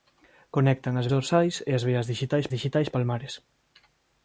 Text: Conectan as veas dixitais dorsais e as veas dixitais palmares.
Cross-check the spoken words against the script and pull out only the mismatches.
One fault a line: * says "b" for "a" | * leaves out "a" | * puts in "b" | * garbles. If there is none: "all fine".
* leaves out "veas dixitais"
* puts in "dixitais"